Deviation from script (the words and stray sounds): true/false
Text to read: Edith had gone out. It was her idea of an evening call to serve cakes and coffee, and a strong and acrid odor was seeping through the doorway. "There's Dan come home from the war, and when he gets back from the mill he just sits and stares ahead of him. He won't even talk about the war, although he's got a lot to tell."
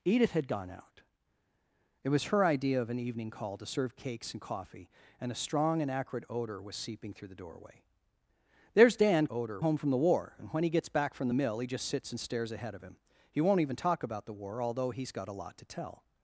true